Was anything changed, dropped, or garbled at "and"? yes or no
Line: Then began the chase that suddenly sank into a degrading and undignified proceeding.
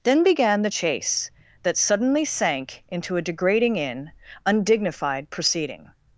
yes